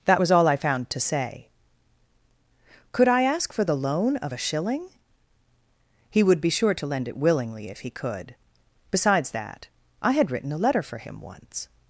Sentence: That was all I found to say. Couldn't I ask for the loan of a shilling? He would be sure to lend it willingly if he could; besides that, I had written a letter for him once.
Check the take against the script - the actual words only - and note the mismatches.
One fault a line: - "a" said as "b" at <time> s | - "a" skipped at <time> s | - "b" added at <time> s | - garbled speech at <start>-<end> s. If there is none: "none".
- "Couldn't" said as "Could" at 2.9 s